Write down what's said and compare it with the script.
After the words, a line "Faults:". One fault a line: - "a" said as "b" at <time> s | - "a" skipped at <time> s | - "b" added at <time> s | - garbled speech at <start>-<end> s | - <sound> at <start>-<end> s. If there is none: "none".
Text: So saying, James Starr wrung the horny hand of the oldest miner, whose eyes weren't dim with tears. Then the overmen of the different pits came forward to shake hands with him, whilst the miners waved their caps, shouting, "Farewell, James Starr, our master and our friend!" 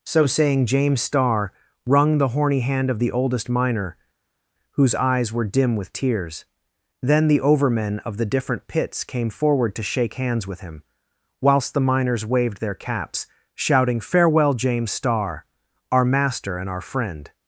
So saying, James Starr wrung the horny hand of the oldest miner, whose eyes were dim with tears. Then the overmen of the different pits came forward to shake hands with him, whilst the miners waved their caps, shouting, "Farewell, James Starr, our master and our friend!"
Faults:
- "weren't" said as "were" at 5.3 s